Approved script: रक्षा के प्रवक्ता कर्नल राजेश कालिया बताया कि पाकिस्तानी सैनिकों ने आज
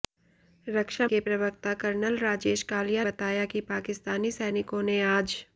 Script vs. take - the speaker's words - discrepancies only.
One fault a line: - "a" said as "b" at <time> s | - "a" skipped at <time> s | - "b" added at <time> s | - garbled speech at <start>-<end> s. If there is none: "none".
none